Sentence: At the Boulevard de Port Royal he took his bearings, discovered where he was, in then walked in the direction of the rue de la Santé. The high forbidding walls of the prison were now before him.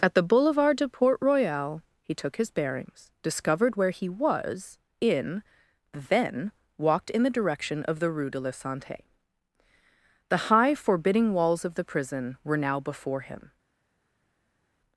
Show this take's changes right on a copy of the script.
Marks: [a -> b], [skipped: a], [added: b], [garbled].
At the Boulevard de Port Royal he took his bearings, discovered where he was, in then walked in the direction of the rue de la Santé. The high forbidding walls of the prison were now before him.